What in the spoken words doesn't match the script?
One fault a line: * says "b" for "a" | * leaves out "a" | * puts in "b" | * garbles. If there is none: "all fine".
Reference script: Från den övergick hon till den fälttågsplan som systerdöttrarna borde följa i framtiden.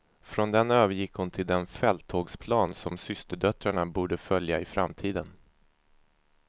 all fine